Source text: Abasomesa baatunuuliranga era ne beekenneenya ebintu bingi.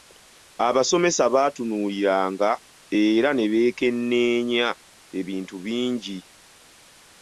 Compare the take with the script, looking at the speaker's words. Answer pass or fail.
pass